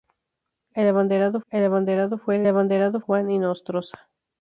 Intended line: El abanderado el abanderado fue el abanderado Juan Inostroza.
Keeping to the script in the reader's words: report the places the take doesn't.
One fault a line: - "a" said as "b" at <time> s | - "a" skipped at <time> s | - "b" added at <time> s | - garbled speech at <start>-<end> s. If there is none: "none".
none